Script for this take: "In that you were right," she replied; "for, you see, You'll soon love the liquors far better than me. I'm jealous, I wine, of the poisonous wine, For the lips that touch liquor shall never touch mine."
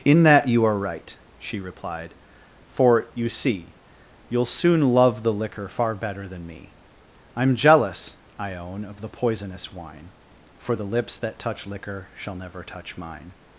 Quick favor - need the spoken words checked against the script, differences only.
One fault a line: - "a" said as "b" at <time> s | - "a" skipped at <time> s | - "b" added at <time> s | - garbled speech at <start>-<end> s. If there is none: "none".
- "were" said as "are" at 0.7 s
- "liquors" said as "liquor" at 5.3 s
- "wine" said as "own" at 8.5 s